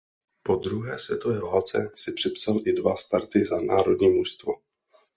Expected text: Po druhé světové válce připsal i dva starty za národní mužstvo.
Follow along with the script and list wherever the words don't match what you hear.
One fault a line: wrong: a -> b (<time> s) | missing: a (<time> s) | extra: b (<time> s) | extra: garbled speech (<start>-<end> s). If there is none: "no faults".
extra: si (2.0 s)